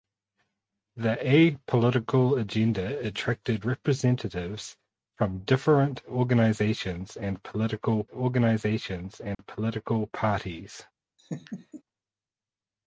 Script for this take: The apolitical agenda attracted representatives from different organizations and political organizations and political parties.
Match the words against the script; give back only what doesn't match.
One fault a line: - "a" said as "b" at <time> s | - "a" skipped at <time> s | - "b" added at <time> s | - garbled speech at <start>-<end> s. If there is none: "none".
none